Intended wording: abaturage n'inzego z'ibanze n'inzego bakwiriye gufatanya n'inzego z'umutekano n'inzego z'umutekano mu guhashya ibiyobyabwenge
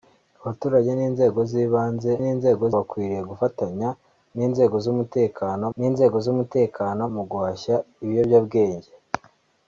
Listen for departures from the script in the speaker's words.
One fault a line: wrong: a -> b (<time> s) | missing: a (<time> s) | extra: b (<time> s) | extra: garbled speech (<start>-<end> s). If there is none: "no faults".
no faults